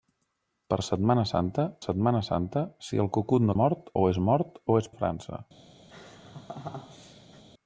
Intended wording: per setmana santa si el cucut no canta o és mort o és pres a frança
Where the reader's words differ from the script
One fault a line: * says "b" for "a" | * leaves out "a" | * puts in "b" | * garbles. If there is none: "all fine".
* puts in "setmana santa"
* says "mort" for "canta"
* leaves out "pres"